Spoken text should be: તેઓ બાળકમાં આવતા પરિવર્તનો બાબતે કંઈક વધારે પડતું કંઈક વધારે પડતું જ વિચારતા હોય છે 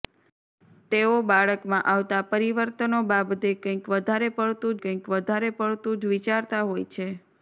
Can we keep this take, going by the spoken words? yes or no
yes